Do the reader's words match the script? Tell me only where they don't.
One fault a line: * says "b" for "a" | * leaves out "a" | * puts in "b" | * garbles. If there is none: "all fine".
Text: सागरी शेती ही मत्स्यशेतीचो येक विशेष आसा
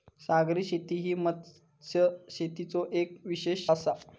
all fine